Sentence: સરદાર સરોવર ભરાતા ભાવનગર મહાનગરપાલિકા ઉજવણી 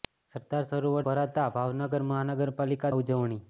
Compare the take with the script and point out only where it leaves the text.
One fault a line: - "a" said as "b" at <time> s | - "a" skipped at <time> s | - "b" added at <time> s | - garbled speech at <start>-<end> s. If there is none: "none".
none